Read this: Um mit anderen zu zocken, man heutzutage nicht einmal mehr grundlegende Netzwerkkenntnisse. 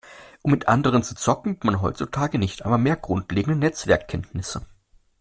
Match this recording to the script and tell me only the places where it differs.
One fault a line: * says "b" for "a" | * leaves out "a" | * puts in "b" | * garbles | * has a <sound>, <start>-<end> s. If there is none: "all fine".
all fine